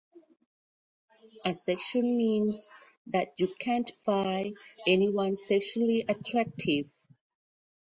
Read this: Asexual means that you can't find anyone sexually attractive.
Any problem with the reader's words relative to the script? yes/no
no